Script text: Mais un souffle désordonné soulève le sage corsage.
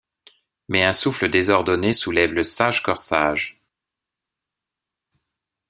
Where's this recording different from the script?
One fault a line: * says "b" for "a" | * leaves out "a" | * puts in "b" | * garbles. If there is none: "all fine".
all fine